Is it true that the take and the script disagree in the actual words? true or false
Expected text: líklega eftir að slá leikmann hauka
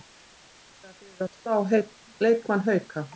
true